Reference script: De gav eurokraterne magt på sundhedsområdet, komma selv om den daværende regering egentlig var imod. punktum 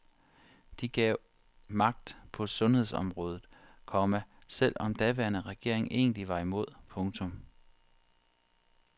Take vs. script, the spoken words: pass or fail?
fail